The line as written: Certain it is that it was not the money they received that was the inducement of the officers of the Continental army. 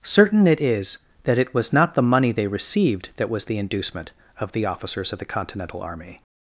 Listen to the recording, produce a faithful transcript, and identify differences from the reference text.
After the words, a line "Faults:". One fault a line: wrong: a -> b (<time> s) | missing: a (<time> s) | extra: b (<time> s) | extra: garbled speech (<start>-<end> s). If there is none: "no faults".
Certain it is that it was not the money they received that was the inducement of the officers of the Continental army.
Faults:
no faults